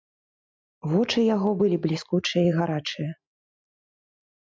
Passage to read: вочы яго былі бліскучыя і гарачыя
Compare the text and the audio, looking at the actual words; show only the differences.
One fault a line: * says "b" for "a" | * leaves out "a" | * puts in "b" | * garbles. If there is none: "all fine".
all fine